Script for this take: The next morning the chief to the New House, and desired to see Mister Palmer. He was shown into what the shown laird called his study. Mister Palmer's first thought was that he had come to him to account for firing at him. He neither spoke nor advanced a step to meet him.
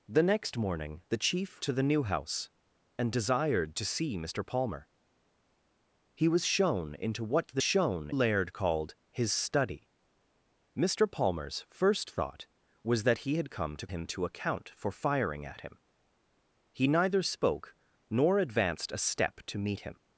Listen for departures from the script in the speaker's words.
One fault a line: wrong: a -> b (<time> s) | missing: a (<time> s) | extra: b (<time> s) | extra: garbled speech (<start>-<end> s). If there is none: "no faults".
no faults